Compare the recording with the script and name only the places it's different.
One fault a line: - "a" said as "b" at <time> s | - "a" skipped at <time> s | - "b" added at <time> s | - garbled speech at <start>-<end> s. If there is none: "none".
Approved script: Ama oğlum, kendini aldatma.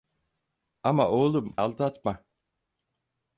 - "kendini" skipped at 1.6 s